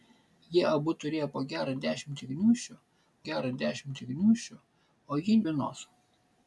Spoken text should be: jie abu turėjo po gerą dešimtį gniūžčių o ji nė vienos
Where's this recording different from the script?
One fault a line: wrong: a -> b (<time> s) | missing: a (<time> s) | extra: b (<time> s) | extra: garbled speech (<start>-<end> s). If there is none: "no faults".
extra: gerą dešimtį gniūžčių (3.3 s)
missing: nė (5.4 s)